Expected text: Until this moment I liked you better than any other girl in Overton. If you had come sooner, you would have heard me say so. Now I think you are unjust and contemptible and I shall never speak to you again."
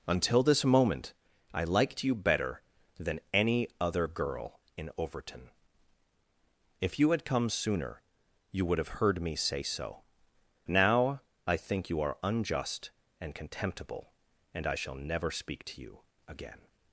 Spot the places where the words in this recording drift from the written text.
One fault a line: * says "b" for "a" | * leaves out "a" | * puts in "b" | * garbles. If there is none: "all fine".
all fine